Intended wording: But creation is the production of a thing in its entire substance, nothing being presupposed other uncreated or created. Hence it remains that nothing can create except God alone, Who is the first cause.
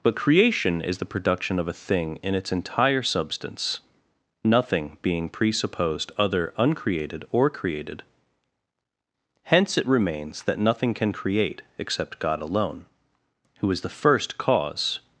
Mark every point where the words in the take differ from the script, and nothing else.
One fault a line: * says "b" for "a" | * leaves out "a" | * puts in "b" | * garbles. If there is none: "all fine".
all fine